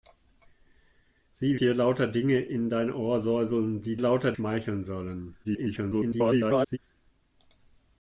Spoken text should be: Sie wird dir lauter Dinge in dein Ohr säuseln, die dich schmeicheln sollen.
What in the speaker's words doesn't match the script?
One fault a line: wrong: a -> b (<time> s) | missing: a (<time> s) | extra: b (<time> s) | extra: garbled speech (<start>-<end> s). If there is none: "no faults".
missing: wird (1.6 s)
wrong: dich -> lauter (4.0 s)
extra: garbled speech (5.4-6.8 s)